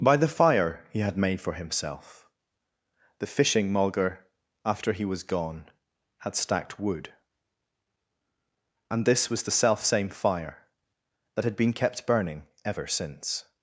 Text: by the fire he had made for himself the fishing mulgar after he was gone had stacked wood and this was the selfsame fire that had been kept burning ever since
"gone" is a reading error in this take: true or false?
false